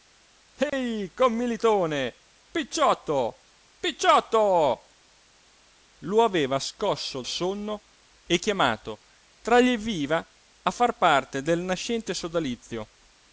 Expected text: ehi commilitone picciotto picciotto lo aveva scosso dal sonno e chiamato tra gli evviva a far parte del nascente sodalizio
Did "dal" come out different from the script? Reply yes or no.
yes